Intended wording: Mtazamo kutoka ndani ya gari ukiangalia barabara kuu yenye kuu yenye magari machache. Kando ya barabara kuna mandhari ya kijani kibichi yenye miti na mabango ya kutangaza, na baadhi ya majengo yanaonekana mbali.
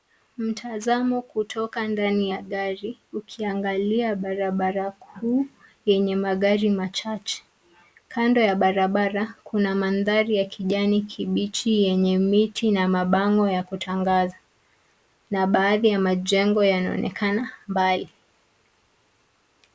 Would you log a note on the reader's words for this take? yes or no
yes